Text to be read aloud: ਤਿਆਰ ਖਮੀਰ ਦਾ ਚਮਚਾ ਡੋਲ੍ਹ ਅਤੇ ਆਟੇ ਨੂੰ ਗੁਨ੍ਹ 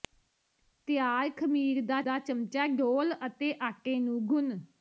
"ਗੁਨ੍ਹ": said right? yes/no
yes